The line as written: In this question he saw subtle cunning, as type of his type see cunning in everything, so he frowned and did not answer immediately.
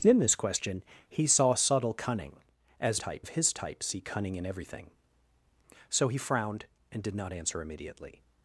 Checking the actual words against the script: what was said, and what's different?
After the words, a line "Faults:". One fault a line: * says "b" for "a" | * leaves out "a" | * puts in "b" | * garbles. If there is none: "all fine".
In this question he saw subtle cunning, as type of his type see cunning in everything, so he frowned and did not answer immediately.
Faults:
all fine